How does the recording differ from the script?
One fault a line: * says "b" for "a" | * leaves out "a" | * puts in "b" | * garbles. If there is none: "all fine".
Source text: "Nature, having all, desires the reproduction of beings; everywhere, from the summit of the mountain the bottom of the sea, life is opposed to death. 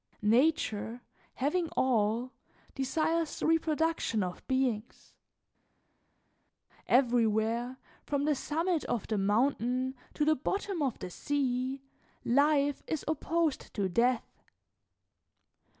* puts in "to"